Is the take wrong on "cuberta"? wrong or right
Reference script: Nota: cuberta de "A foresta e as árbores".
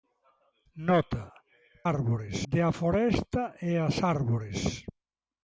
wrong